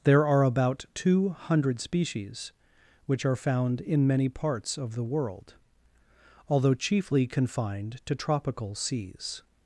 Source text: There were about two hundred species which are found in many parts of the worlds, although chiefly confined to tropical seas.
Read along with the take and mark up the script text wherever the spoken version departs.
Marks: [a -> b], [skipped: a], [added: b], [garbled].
There [were -> are] about two hundred species which are found in many parts of the [worlds, -> world] although chiefly confined to tropical seas.